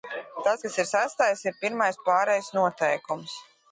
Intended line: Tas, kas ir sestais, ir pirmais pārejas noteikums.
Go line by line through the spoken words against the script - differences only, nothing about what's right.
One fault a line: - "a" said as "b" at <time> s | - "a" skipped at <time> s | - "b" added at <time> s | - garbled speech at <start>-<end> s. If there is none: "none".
none